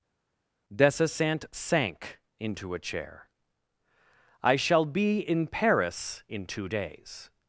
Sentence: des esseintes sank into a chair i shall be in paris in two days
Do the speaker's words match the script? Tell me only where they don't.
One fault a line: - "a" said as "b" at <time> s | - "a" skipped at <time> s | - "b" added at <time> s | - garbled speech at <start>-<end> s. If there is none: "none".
none